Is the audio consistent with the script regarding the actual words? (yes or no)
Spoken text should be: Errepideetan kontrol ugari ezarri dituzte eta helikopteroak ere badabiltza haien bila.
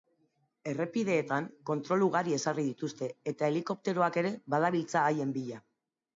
yes